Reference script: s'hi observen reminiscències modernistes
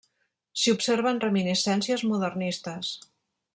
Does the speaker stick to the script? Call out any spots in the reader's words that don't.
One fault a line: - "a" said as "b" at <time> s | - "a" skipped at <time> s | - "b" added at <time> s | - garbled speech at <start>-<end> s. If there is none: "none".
none